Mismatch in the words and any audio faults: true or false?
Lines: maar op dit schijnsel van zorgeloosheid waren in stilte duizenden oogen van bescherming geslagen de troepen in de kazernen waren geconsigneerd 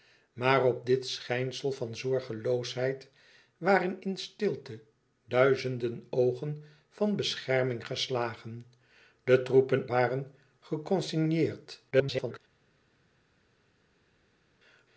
true